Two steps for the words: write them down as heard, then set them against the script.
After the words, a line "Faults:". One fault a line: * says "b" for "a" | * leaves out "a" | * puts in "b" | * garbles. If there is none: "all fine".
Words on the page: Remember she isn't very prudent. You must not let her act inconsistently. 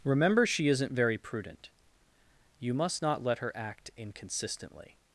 Remember she isn't very prudent. You must not let her act inconsistently.
Faults:
all fine